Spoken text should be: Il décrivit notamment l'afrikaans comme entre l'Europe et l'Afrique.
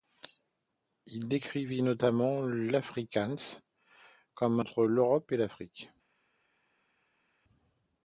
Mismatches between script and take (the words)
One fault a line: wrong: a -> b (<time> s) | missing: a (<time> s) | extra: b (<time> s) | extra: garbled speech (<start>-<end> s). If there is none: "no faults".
no faults